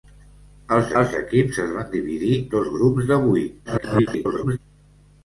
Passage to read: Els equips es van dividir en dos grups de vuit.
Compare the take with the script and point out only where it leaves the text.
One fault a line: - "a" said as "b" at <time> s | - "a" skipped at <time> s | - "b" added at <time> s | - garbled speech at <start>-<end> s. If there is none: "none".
- "els" added at 1.0 s
- "en" skipped at 2.4 s
- garbled speech at 3.7-4.6 s